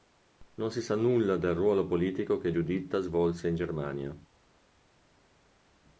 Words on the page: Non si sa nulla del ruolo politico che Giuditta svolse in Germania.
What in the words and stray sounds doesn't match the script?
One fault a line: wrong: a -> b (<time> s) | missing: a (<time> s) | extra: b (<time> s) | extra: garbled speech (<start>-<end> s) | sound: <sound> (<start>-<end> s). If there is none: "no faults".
no faults